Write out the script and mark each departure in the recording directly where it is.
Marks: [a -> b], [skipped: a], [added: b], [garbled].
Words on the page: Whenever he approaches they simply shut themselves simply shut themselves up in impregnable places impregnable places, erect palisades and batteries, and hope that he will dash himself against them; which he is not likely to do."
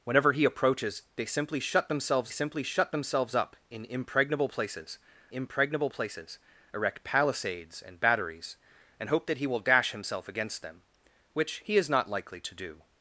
Whenever he approaches they simply shut themselves simply shut themselves up in impregnable places impregnable places, erect palisades and batteries, and hope that he will dash himself against them; which he is not likely to do."